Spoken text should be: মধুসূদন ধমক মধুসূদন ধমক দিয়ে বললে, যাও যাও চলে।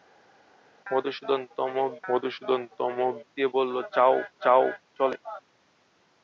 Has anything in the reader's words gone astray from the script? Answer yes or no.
no